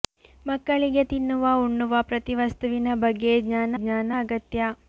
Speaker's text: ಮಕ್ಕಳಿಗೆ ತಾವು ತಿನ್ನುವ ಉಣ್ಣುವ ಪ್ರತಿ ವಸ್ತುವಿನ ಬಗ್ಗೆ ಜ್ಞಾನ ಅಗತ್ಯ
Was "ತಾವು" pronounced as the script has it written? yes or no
no